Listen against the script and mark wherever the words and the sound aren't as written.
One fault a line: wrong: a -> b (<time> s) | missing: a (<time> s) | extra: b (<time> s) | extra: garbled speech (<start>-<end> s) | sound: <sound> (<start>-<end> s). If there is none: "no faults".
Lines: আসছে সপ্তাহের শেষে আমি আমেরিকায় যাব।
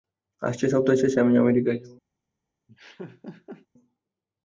sound: laugh (2.7-3.7 s)